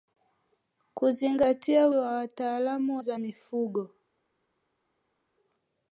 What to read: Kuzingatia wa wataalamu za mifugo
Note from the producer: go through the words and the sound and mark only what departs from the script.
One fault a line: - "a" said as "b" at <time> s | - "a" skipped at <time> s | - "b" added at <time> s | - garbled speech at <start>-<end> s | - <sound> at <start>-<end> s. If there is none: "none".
none